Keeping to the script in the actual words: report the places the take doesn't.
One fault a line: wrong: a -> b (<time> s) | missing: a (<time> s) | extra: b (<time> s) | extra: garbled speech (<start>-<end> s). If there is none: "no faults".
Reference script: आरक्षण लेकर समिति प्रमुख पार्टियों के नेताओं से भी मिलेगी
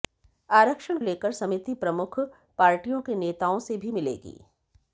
no faults